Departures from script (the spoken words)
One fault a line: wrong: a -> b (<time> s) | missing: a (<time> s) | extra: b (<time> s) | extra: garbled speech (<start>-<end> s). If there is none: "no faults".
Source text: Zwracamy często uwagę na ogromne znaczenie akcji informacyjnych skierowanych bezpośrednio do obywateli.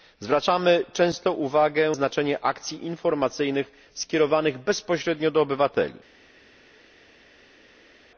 missing: na ogromne (1.9 s)